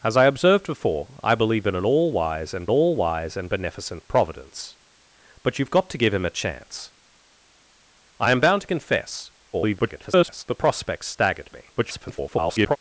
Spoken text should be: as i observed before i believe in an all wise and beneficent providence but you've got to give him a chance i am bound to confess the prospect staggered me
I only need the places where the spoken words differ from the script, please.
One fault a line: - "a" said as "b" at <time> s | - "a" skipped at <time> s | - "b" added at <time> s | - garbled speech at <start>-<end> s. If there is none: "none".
- "all wise and" added at 2.7 s
- garbled speech at 9.5-10.4 s
- garbled speech at 11.8-12.8 s